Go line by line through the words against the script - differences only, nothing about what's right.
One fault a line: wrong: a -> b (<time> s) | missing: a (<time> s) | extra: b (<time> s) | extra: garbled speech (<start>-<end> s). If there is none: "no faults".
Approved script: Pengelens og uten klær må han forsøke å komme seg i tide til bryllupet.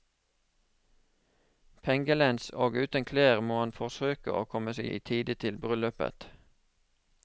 no faults